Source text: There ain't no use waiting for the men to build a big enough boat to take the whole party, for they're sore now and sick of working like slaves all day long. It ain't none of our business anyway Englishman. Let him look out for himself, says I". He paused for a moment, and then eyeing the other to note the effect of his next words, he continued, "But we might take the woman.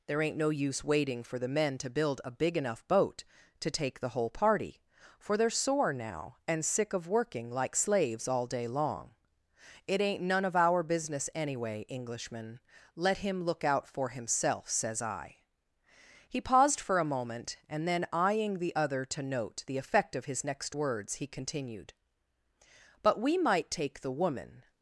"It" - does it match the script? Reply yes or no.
yes